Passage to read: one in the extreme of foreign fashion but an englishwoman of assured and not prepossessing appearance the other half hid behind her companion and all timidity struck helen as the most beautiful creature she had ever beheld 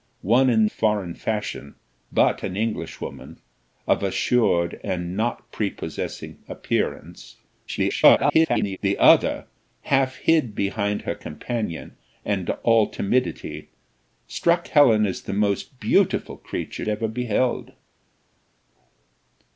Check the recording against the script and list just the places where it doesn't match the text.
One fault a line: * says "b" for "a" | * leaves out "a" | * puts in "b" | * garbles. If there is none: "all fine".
* leaves out "the extreme of"
* garbles
* leaves out "she had"